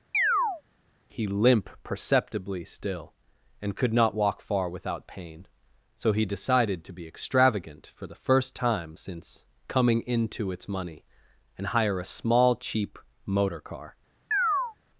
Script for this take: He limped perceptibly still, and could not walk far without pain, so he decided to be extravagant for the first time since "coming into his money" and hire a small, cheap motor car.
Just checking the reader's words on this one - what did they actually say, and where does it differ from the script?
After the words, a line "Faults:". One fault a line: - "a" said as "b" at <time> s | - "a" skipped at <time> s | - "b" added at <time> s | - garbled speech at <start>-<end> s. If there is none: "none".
He limp perceptibly still, and could not walk far without pain, so he decided to be extravagant for the first time since "coming into its money" and hire a small, cheap motor car.
Faults:
- "limped" said as "limp" at 1.3 s
- "his" said as "its" at 10.5 s